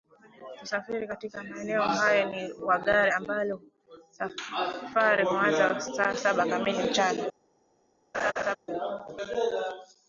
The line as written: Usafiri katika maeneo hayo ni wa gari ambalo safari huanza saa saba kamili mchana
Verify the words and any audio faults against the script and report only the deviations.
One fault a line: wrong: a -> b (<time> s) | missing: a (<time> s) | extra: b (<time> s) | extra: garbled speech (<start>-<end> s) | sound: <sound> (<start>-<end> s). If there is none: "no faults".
sound: laugh (8.1-8.6 s)